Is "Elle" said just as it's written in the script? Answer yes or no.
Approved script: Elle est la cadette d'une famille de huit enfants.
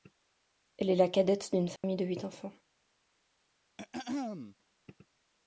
yes